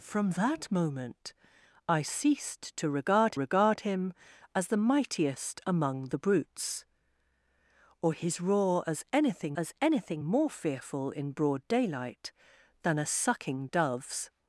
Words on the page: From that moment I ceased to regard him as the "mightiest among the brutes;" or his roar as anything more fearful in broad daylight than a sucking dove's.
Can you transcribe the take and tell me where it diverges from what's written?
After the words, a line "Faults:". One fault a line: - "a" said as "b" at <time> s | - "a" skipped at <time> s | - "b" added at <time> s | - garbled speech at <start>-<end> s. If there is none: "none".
From that moment I ceased to regard regard him as the "mightiest among the brutes;" or his roar as anything as anything more fearful in broad daylight than a sucking dove's.
Faults:
- "regard" added at 3.3 s
- "as anything" added at 9.6 s